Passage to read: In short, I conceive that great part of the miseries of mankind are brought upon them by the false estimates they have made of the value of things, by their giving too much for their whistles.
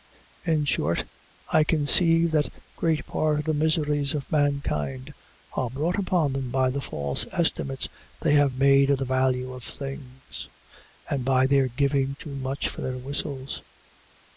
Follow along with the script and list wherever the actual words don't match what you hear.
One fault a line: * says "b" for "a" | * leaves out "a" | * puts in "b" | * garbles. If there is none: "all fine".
* puts in "and"